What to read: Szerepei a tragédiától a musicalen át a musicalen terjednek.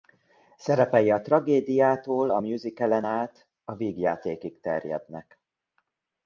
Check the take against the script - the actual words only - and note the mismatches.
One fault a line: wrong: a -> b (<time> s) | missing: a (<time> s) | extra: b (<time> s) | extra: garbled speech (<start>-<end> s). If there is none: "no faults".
wrong: musicalen -> vígjátékig (3.7 s)